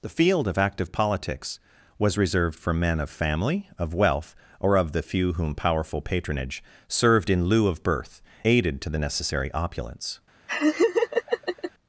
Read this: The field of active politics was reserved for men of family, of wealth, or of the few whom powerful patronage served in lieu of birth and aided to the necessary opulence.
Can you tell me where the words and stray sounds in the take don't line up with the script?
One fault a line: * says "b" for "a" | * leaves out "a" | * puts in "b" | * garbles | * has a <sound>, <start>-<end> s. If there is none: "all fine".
* leaves out "and"
* has a laugh, 10.5-11.7 s